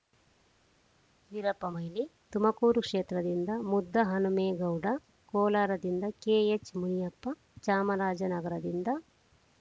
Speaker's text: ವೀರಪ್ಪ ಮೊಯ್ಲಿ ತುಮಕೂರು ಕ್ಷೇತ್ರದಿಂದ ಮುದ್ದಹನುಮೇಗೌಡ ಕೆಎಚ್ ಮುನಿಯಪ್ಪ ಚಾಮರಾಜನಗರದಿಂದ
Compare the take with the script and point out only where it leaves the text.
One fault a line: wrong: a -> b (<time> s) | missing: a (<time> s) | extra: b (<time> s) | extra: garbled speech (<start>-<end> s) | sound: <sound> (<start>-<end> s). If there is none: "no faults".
extra: ಕೋಲಾರದಿಂದ (5.3 s)